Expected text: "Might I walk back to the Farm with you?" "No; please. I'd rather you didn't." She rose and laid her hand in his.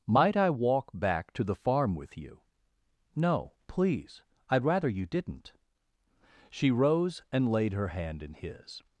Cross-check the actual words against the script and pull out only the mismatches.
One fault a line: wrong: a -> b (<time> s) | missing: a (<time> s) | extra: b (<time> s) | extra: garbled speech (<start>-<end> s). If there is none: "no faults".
no faults